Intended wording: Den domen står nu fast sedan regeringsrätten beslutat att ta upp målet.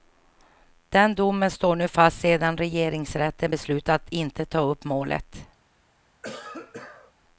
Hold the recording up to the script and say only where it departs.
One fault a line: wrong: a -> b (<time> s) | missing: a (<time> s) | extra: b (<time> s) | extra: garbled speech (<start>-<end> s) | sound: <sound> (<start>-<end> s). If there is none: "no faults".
extra: inte (4.1 s)
sound: cough (6.2-7.1 s)